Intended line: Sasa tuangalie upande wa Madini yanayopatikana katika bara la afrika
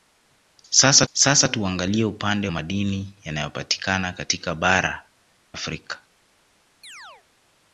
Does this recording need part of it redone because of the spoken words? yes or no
yes